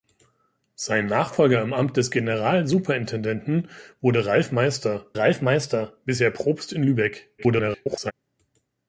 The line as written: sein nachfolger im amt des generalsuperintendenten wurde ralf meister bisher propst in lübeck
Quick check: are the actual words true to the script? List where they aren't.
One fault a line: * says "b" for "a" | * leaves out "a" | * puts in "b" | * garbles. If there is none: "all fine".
* puts in "ralf meister"
* garbles